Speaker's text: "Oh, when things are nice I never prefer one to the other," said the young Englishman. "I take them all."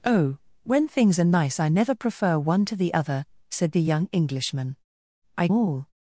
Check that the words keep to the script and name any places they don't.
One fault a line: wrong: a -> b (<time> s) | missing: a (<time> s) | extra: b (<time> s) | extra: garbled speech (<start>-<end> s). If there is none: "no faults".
missing: take them (5.5 s)